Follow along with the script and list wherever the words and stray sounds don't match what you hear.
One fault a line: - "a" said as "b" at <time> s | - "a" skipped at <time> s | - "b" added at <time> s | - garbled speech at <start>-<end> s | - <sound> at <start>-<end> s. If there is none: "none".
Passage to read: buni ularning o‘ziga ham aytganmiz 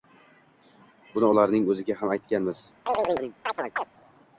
- chirp at 2.9-3.9 s